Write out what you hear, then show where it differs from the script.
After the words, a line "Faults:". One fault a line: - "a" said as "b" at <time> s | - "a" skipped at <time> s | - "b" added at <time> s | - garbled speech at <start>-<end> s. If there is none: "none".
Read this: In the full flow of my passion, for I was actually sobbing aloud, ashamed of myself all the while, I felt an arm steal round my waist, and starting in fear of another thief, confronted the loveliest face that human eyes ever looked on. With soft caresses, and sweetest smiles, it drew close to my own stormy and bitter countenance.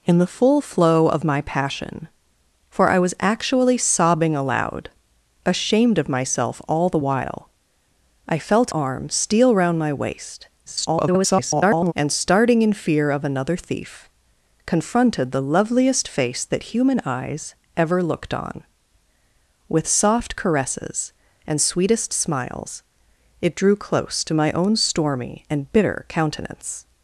In the full flow of my passion, for I was actually sobbing aloud, ashamed of myself all the while, I felt arm steal round my waist, [garbled] and starting in fear of another thief, confronted the loveliest face that human eyes ever looked on. With soft caresses, and sweetest smiles, it drew close to my own stormy and bitter countenance.
Faults:
- "an" skipped at 8.7 s
- garbled speech at 10.7-11.9 s